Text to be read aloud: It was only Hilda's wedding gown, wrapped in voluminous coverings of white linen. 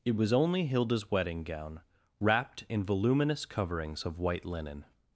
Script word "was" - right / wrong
right